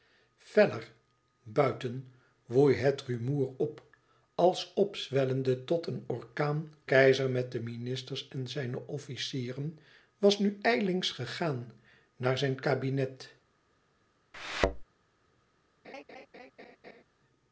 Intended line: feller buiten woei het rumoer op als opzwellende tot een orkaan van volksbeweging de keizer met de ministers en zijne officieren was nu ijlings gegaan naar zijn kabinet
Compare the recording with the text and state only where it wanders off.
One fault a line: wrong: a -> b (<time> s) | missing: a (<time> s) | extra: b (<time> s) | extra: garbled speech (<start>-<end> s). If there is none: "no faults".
missing: van volksbeweging de (6.7 s)